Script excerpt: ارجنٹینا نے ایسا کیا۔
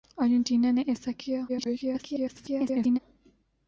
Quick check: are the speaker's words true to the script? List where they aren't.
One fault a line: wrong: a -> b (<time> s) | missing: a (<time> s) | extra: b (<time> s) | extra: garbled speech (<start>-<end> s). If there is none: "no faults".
extra: garbled speech (1.5-3.0 s)